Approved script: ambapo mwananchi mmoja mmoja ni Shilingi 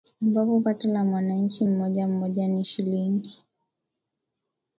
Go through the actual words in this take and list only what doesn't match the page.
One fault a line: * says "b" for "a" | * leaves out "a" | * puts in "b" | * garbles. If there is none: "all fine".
* puts in "pato la"